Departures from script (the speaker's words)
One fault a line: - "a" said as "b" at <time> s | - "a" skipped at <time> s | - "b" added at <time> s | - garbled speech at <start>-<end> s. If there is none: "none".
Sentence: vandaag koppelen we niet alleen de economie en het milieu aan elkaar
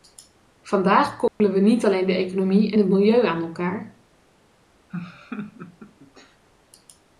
none